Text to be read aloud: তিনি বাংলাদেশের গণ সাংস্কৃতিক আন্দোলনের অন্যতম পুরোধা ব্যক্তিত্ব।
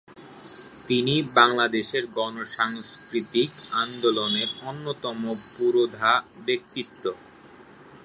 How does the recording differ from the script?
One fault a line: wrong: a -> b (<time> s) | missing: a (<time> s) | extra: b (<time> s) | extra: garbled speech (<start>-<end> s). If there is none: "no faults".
no faults